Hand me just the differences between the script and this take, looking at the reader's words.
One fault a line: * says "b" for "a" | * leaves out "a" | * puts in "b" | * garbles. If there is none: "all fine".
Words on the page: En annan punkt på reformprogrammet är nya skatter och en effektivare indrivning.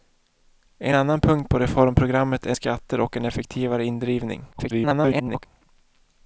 * leaves out "nya"
* garbles